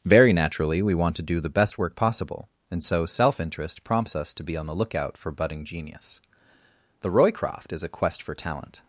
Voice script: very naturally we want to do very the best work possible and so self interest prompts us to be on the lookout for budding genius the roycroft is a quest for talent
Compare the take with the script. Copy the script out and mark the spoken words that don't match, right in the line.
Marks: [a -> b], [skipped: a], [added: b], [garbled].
very naturally we want to do [skipped: very] the best work possible and so self interest prompts us to be on the lookout for budding genius the roycroft is a quest for talent